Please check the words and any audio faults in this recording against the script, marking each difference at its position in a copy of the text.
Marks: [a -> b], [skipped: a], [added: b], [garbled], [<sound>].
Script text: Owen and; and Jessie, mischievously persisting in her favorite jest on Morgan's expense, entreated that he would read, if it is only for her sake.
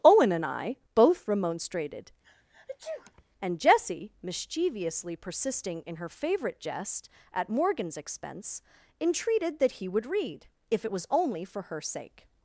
Owen and; [added: I both remonstrated] [sneeze] and Jessie, mischievously persisting in her favorite jest [on -> at] Morgan's expense, entreated that he would read, if it [is -> was] only for her sake.